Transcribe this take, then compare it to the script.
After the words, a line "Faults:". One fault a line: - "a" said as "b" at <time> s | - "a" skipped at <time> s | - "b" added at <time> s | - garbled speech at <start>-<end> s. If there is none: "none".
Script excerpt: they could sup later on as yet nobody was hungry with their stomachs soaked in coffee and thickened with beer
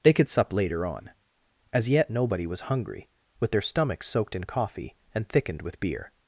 they could sup later on as yet nobody was hungry with their stomachs soaked in coffee and thickened with beer
Faults:
none